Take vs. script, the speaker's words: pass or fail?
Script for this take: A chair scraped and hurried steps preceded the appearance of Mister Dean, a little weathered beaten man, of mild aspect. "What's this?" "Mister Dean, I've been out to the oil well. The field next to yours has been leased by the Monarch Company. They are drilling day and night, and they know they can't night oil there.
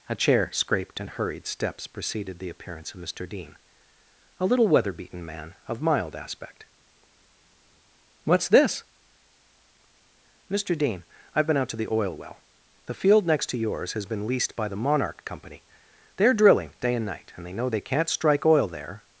fail